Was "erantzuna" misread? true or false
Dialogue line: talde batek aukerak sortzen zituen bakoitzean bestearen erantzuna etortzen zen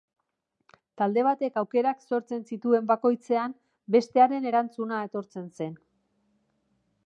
false